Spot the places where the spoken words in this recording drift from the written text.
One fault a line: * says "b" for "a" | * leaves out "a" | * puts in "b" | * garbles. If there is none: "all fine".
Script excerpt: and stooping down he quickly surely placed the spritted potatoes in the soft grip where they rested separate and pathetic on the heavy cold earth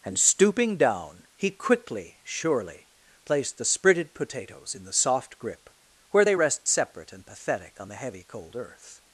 * says "rest" for "rested"